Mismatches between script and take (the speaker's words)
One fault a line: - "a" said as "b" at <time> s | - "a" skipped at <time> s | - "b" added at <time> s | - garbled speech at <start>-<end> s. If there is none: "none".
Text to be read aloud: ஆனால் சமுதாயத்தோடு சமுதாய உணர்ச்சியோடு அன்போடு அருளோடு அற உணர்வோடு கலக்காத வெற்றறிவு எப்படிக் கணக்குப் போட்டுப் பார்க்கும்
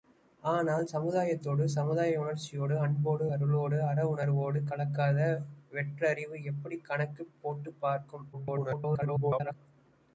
- garbled speech at 8.3-9.5 s